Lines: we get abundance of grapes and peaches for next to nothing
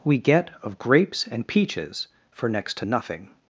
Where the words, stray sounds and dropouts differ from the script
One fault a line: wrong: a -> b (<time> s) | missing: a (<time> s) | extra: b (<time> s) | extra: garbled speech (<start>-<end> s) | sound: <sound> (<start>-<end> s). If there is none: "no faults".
missing: abundance (0.5 s)